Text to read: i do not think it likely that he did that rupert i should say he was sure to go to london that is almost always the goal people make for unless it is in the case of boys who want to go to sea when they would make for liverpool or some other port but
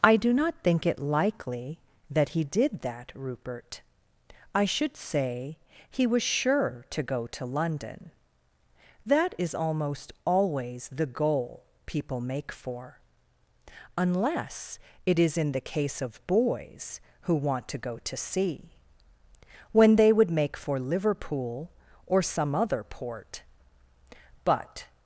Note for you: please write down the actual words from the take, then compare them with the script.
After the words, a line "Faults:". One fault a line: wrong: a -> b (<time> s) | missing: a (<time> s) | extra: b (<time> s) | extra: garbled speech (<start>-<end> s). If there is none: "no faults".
i do not think it likely that he did that rupert i should say he was sure to go to london that is almost always the goal people make for unless it is in the case of boys who want to go to sea when they would make for liverpool or some other port but
Faults:
no faults